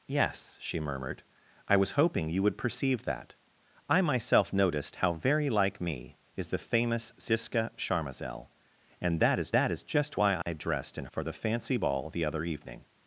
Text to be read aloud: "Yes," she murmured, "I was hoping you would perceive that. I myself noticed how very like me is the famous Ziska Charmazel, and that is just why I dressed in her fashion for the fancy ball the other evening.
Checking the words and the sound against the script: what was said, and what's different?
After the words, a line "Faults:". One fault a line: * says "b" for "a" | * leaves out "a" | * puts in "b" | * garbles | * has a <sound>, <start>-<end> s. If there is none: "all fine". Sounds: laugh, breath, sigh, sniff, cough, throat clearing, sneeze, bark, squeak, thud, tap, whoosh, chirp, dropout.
"Yes," she murmured, "I was hoping you would perceive that. I myself noticed how very like me is the famous Ziska Charmazel, and that is that is just why I dressed in for the fancy ball the other evening.
Faults:
* puts in "that is"
* has a dropout, 10.4-10.5 s
* leaves out "her fashion"